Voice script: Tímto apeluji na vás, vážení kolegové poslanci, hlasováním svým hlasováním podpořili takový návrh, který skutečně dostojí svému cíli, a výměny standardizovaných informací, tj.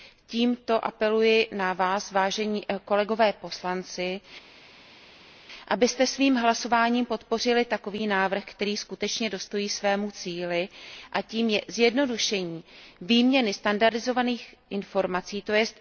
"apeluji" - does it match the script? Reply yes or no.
yes